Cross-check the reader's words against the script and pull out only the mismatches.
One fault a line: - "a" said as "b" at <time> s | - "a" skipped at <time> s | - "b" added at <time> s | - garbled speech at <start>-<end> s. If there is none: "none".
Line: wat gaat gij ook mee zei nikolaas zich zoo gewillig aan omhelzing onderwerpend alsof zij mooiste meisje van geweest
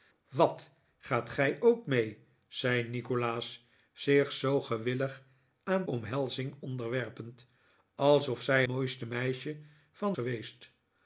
none